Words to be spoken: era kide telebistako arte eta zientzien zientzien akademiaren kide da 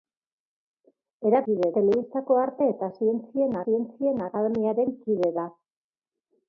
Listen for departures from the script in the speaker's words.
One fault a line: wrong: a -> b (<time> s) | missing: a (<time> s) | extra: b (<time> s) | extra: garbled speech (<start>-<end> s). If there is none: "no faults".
no faults